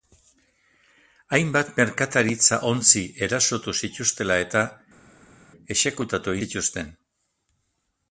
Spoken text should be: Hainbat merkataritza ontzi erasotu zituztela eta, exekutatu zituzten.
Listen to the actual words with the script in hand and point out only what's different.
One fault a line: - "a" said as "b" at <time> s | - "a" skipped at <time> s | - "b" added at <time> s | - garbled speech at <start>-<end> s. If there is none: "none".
none